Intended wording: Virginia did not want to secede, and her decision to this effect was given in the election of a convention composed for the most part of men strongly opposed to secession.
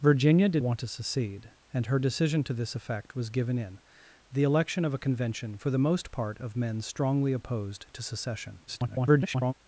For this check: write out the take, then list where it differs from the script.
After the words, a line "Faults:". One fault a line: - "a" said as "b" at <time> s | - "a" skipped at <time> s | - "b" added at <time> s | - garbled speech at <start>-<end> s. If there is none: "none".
Virginia did want to secede, and her decision to this effect was given in the election of a convention for the most part of men strongly opposed to secession. [garbled]
Faults:
- "not" skipped at 0.6 s
- "composed" skipped at 5.6 s
- garbled speech at 8.7-9.5 s